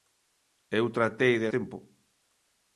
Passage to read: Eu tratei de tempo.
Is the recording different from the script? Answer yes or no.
no